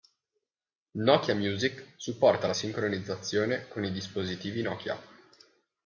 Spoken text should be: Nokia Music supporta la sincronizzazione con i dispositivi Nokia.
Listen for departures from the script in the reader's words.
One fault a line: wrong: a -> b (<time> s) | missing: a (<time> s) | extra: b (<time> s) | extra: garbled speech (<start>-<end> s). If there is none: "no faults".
no faults